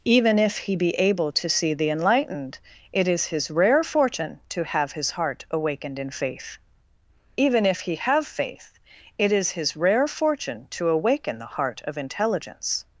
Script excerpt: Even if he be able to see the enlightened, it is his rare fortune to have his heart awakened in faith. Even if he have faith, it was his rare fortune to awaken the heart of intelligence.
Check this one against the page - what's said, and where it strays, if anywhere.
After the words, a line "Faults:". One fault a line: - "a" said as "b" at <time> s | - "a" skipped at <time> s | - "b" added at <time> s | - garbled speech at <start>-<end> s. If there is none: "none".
Even if he be able to see the enlightened, it is his rare fortune to have his heart awakened in faith. Even if he have faith, it is his rare fortune to awaken the heart of intelligence.
Faults:
- "was" said as "is" at 9.3 s